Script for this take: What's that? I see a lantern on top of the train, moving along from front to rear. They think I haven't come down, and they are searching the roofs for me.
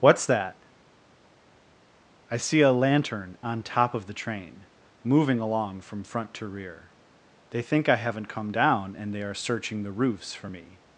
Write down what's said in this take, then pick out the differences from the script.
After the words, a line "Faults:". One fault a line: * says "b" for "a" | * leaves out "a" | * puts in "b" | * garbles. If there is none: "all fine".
What's that? I see a lantern on top of the train, moving along from front to rear. They think I haven't come down, and they are searching the roofs for me.
Faults:
all fine